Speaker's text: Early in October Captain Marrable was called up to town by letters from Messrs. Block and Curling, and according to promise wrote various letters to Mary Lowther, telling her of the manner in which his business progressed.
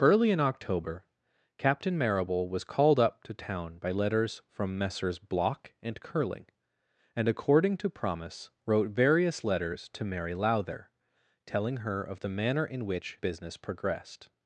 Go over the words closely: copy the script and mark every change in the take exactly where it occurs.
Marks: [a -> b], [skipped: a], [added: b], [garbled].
Early in October Captain Marrable was called up to town by letters from Messrs. Block and Curling, and according to promise wrote various letters to Mary Lowther, telling her of the manner in which [skipped: his] business progressed.